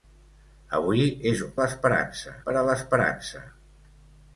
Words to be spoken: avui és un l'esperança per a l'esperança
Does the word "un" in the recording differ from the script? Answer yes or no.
no